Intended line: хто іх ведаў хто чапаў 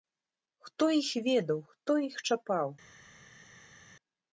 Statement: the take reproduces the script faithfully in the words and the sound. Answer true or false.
false